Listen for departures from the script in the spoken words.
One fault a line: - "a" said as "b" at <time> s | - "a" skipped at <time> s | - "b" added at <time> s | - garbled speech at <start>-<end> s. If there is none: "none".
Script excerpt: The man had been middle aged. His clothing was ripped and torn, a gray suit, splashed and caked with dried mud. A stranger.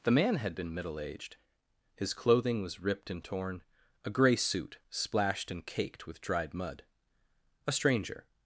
none